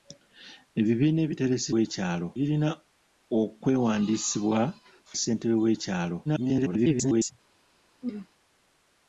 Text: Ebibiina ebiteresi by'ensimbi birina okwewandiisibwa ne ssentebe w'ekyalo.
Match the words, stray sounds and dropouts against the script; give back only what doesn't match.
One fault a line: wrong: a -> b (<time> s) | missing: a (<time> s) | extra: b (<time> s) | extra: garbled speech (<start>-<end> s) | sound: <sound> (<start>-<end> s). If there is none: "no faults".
wrong: by'ensimbi -> w'ekyalo (1.7 s)
missing: ne (4.6 s)
extra: garbled speech (6.2-7.3 s)
sound: throat clearing (8.0-8.3 s)